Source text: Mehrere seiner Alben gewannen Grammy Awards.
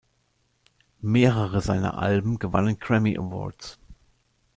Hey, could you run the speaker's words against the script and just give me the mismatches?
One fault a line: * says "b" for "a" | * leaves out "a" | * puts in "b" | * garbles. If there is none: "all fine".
all fine